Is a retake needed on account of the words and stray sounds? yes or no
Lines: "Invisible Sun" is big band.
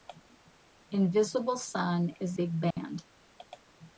yes